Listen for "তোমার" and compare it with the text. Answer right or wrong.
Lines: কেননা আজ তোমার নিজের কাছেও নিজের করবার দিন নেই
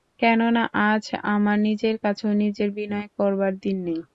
wrong